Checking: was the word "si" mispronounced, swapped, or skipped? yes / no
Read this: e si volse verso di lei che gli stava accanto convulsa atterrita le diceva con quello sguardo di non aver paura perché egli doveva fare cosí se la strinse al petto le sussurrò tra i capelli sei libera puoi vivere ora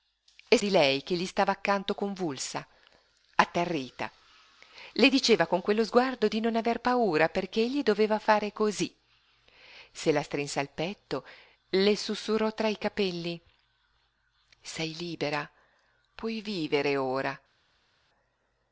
yes